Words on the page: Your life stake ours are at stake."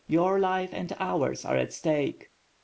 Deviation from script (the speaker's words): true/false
true